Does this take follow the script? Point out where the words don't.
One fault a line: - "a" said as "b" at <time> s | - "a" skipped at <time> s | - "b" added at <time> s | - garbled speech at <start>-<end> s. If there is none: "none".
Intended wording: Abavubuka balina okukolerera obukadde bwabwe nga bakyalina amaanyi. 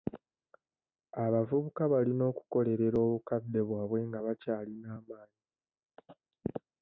none